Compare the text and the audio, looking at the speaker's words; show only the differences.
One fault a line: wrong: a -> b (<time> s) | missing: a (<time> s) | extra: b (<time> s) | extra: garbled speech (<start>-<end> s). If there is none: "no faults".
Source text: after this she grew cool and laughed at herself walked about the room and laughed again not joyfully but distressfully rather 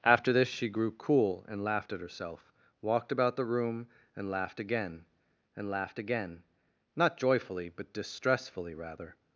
extra: and laughed again (5.6 s)